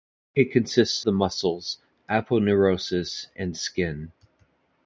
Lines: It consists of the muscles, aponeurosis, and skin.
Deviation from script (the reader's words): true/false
true